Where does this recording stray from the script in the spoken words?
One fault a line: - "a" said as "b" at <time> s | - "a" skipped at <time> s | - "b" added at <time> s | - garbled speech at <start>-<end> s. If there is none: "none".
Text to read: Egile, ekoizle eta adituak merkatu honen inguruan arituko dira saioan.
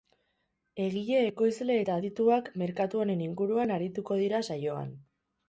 none